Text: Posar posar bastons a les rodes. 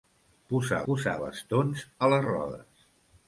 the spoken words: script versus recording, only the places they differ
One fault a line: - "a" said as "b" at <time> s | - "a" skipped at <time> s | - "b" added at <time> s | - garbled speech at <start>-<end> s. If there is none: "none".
none